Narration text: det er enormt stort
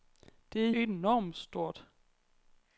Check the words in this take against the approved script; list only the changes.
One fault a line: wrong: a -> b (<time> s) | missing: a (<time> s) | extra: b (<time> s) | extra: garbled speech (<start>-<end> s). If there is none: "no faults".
no faults